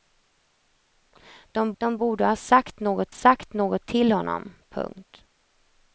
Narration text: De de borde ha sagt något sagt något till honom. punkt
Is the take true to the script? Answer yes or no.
yes